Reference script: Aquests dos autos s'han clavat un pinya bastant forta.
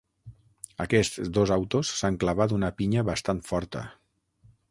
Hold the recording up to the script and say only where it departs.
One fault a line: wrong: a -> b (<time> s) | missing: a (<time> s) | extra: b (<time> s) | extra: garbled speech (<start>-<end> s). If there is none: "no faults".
wrong: un -> una (2.6 s)